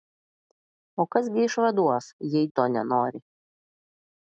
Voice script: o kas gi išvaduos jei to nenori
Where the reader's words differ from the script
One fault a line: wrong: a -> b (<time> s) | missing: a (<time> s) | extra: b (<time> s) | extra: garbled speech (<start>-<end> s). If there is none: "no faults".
no faults